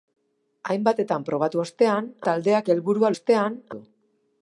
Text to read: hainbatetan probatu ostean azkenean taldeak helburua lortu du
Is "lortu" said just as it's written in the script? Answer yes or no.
no